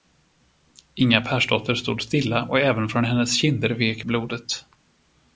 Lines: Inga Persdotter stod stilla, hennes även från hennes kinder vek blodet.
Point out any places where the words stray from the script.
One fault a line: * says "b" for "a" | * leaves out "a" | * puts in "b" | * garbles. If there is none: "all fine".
* says "och" for "hennes"